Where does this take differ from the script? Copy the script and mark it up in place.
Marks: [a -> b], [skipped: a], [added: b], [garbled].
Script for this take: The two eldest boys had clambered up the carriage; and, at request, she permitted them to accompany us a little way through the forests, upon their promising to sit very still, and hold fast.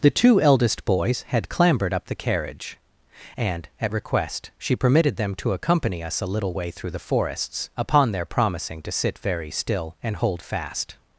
The two eldest boys had clambered up the carriage; and, at request, she permitted them to accompany us a little way through the forests, upon their promising to sit very still, and hold fast.